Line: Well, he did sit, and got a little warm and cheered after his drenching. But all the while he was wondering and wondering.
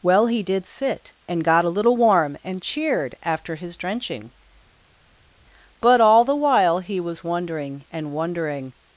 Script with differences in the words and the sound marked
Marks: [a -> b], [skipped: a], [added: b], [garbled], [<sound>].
Well, he did sit, and got a little warm and cheered after his drenching. But all the while he was wondering and wondering.